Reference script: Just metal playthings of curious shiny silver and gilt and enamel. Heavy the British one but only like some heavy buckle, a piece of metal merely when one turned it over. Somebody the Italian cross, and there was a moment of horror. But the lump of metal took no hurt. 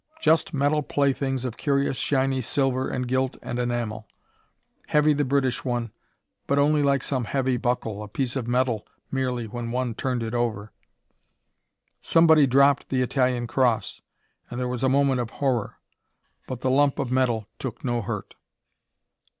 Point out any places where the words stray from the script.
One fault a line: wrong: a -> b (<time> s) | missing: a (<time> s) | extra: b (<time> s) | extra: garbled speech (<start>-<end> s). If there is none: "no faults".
extra: dropped (12.5 s)